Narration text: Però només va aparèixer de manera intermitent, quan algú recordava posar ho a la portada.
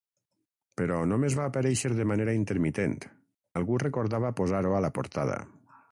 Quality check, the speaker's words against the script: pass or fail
fail